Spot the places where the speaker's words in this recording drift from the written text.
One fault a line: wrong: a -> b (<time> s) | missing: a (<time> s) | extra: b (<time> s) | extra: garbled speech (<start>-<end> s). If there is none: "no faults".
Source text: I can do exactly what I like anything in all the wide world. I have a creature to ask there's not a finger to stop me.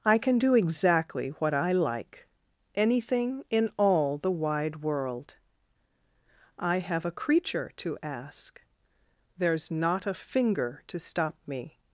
no faults